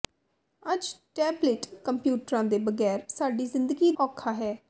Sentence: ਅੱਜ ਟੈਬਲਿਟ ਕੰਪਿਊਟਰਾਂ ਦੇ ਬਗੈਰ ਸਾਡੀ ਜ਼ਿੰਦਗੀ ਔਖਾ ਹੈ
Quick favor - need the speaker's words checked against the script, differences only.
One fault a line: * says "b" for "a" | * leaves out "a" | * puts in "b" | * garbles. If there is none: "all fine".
all fine